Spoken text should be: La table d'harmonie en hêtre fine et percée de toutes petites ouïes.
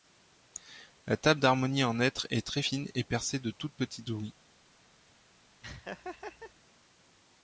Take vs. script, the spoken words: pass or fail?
fail